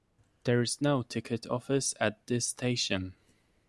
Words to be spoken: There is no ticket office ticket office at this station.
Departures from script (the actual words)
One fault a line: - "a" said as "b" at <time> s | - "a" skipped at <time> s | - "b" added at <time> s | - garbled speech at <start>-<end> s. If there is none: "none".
- "ticket office" skipped at 1.9 s